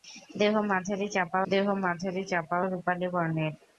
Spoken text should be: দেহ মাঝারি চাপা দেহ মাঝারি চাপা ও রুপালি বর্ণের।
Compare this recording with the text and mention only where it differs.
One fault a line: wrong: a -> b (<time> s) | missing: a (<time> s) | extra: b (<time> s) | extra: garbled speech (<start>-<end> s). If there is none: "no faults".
no faults